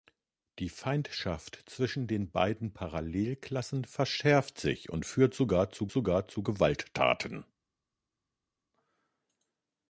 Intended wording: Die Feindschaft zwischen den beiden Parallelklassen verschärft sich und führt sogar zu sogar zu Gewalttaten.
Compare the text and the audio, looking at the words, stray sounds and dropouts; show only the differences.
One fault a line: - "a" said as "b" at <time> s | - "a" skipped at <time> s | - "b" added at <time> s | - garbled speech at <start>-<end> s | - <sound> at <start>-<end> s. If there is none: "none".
none